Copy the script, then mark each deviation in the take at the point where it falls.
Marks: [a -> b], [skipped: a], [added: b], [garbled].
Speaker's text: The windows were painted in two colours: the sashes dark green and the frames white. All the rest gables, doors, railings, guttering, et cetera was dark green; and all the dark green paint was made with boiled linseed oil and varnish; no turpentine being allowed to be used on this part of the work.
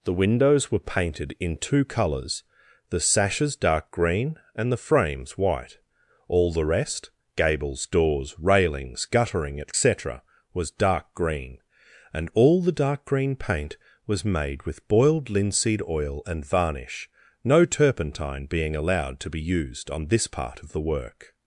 The windows were painted in two colours: the sashes dark green and the frames white. All the rest gables, doors, railings, guttering, et cetera was dark green; and all the dark green paint was made with boiled linseed oil and varnish; no turpentine being allowed to be used on this part of the work.